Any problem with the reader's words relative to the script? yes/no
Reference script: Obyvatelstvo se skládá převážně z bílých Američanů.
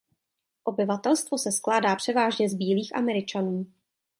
no